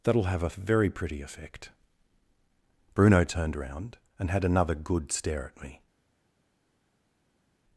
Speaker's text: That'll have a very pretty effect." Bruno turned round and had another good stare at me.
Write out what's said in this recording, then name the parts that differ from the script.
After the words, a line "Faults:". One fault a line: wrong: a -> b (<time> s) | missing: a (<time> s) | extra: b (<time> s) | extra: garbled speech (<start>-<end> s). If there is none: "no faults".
That'll have a very pretty effect." Bruno turned round and had another good stare at me.
Faults:
no faults